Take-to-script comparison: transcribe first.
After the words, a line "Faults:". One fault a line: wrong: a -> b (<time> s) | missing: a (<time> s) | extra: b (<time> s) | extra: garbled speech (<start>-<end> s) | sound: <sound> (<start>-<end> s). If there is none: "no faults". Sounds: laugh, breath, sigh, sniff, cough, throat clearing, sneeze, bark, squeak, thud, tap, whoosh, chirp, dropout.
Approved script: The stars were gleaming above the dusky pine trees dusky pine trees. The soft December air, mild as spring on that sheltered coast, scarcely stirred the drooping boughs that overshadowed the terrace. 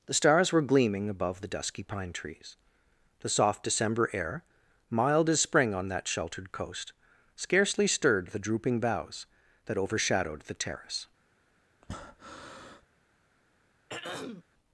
The stars were gleaming above the dusky pine trees. The soft December air, mild as spring on that sheltered coast, scarcely stirred the drooping boughs that overshadowed the terrace.
Faults:
missing: dusky pine trees (2.6 s)
sound: breath (11.8-12.8 s)
sound: throat clearing (13.9-14.4 s)